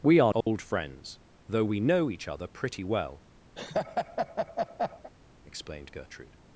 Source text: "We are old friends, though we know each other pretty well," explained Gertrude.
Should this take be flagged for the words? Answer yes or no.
no